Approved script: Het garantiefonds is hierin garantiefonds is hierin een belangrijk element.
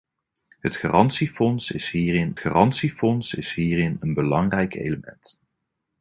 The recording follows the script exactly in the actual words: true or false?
true